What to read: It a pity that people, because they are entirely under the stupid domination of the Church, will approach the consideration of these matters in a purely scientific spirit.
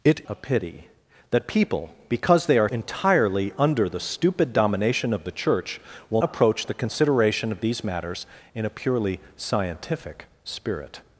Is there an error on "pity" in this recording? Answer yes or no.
no